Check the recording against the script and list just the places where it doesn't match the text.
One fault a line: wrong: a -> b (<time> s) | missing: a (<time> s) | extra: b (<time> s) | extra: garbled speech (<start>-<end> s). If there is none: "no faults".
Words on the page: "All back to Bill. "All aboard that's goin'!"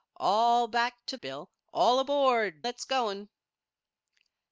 no faults